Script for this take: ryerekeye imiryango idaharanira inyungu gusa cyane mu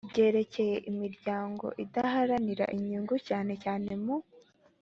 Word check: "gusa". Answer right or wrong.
wrong